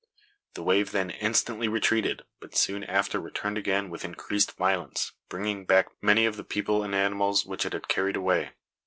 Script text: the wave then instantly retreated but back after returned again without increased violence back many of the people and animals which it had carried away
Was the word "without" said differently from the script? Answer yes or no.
yes